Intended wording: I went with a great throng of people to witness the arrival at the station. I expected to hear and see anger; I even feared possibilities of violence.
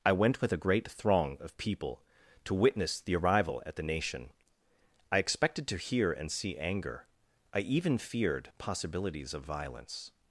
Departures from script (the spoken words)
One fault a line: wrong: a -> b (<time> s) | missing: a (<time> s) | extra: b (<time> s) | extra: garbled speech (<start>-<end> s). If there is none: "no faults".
wrong: station -> nation (3.8 s)